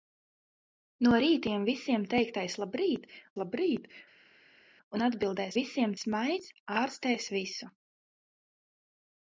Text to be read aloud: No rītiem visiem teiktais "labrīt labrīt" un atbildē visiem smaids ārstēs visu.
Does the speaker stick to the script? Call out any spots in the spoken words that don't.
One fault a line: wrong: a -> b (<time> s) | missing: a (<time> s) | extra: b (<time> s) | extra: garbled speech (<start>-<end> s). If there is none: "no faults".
no faults